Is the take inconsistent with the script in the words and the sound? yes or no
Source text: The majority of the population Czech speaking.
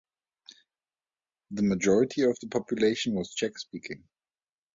yes